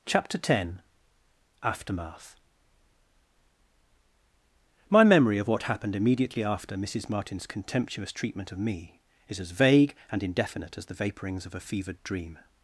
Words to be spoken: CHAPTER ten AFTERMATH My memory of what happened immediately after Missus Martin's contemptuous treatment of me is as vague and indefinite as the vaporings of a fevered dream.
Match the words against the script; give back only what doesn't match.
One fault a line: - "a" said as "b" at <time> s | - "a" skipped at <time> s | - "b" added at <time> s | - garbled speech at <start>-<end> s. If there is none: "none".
none